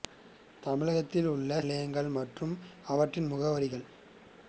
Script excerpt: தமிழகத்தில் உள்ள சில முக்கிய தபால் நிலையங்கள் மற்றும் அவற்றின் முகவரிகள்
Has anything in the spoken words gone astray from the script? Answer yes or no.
yes